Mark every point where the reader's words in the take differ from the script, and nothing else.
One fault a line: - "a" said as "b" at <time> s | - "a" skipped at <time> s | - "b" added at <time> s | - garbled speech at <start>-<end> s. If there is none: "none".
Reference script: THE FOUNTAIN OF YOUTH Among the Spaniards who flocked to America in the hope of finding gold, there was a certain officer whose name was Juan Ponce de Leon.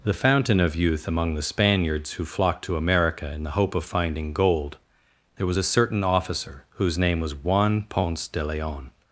none